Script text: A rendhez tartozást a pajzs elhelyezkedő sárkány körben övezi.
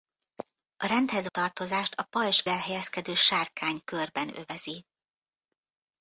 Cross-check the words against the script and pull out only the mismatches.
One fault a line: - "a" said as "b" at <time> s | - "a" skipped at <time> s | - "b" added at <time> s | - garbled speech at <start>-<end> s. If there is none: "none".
none